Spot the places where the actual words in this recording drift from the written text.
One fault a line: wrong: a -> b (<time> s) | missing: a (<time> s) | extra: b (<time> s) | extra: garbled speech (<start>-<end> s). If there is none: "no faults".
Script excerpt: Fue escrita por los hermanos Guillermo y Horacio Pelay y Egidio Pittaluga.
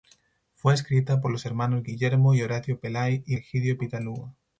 no faults